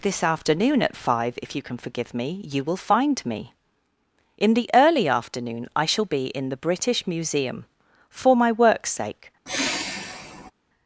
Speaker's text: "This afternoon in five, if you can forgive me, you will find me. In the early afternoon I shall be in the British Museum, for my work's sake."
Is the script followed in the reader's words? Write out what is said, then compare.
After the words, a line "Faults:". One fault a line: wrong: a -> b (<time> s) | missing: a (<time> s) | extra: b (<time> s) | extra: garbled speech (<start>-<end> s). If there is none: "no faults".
"This afternoon at five, if you can forgive me, you will find me. In the early afternoon I shall be in the British Museum, for my work's sake."
Faults:
wrong: in -> at (0.8 s)